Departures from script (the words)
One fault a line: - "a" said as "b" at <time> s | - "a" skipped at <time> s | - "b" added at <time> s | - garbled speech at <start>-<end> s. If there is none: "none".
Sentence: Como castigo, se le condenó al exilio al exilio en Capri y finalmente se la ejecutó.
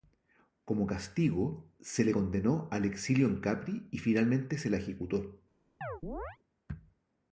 - "al exilio" skipped at 3.3 s